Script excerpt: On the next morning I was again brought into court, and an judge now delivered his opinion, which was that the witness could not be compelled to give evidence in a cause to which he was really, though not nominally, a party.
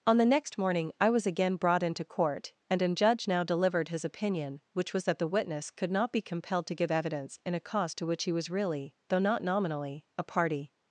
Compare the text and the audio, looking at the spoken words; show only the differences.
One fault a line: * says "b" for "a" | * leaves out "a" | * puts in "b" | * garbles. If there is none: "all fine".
all fine